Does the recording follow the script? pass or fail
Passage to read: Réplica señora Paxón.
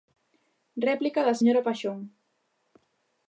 fail